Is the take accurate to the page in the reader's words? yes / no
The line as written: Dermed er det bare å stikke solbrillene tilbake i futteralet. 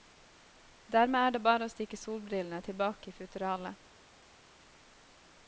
yes